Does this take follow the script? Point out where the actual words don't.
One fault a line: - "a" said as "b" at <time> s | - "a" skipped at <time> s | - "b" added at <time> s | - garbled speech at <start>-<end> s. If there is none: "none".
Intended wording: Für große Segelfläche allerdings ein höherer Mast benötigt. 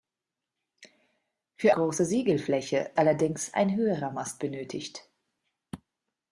none